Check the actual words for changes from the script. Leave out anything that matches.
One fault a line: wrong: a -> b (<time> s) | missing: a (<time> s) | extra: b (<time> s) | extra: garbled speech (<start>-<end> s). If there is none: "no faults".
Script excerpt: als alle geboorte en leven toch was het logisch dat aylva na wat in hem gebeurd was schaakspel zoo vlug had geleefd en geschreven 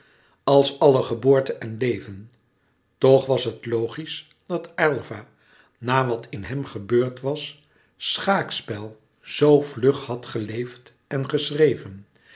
no faults